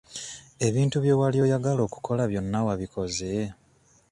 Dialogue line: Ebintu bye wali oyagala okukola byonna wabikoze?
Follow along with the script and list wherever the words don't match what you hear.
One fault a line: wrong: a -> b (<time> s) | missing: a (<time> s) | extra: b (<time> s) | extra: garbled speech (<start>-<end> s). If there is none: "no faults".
no faults